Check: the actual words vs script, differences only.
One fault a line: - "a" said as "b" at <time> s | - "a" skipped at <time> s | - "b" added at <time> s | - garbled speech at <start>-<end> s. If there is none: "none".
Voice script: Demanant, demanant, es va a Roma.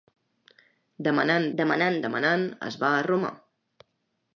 - "demanant" added at 2.1 s